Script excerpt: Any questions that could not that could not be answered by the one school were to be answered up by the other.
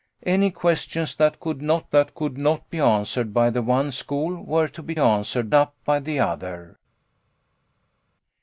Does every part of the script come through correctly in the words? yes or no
yes